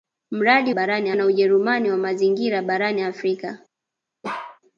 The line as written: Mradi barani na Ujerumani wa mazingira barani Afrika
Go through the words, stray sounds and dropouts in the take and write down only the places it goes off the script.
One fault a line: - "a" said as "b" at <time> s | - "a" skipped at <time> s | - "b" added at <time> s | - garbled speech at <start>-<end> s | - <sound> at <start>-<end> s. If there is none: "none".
- bark at 4.2-4.6 s